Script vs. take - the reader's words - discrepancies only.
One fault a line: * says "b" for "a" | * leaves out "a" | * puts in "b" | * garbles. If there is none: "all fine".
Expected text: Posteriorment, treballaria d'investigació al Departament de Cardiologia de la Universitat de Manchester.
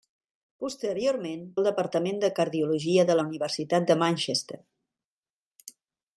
* leaves out "treballaria d'investigació"